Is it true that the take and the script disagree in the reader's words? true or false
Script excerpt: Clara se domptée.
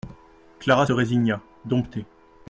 true